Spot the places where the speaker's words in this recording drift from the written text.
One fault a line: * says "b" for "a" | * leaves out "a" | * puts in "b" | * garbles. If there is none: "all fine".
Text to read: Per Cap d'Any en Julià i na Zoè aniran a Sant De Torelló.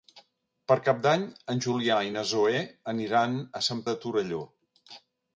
all fine